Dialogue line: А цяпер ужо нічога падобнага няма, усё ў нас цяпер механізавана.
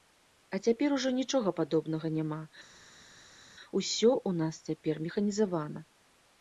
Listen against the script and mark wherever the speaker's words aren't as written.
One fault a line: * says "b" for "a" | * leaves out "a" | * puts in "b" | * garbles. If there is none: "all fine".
all fine